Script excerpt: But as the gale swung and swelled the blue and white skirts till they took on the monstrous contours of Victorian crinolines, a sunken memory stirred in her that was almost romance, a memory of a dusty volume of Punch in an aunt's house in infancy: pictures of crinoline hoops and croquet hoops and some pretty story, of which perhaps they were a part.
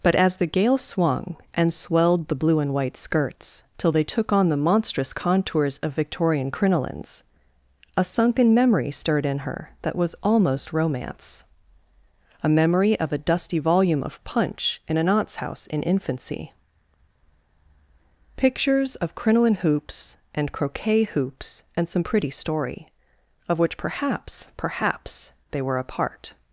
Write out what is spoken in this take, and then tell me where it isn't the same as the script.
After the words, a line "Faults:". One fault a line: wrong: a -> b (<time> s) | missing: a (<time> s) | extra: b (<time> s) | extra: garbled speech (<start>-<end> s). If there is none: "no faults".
But as the gale swung and swelled the blue and white skirts till they took on the monstrous contours of Victorian crinolines, a sunken memory stirred in her that was almost romance, a memory of a dusty volume of Punch in an aunt's house in infancy: pictures of crinoline hoops and croquet hoops and some pretty story, of which perhaps perhaps they were a part.
Faults:
extra: perhaps (24.5 s)